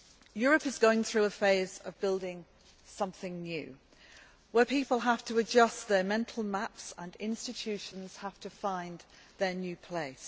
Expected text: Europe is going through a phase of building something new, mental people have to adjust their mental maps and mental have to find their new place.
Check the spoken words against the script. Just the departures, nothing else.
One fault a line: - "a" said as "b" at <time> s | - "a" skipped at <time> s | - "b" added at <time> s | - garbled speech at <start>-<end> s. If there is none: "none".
- "mental" said as "where" at 4.5 s
- "mental" said as "institutions" at 7.2 s